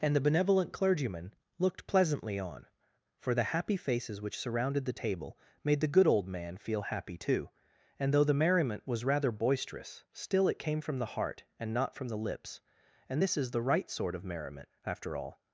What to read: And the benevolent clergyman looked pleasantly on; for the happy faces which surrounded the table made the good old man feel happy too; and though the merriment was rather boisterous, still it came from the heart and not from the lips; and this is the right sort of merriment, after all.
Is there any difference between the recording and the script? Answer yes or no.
no